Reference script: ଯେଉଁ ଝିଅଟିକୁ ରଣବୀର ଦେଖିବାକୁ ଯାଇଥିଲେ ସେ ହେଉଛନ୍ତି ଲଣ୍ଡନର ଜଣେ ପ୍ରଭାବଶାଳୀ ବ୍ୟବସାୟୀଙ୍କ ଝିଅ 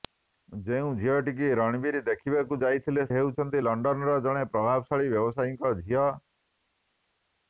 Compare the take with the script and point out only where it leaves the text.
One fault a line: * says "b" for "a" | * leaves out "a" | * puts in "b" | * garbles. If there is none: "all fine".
* leaves out "ସେ"